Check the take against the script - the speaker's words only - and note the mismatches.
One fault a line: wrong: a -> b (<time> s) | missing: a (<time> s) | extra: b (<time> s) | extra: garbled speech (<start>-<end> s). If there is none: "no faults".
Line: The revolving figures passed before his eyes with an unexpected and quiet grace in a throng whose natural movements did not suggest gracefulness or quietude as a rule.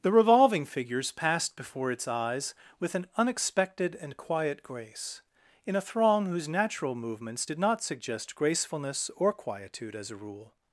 wrong: his -> its (1.9 s)